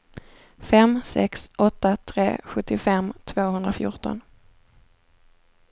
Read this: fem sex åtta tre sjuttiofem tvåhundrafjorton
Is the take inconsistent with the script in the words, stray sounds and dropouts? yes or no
no